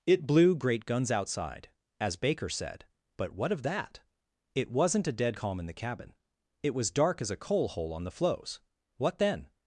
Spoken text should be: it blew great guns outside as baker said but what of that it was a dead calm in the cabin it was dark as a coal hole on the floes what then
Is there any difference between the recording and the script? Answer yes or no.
yes